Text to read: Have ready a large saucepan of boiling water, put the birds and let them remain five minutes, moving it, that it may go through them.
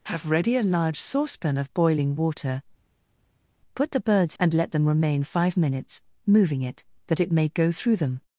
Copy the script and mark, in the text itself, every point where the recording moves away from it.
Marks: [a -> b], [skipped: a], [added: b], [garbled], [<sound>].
Have ready a large saucepan of boiling water, put the birds and let them remain five minutes, moving it, that it may go through them.